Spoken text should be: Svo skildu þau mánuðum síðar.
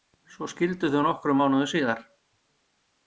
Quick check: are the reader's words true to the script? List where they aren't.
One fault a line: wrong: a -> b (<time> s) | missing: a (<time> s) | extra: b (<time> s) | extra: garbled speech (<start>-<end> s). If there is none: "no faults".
extra: nokkrum (1.1 s)